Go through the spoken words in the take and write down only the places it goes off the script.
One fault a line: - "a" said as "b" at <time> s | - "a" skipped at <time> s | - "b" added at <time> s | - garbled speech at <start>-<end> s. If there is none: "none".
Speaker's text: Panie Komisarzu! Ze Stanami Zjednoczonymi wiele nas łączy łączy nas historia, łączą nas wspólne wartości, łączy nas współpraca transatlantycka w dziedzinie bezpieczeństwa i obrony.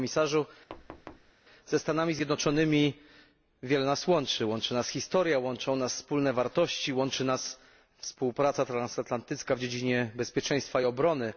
none